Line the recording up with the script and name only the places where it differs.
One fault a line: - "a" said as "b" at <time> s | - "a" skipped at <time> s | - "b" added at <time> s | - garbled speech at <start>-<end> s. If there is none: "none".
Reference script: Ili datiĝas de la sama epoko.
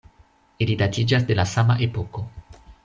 none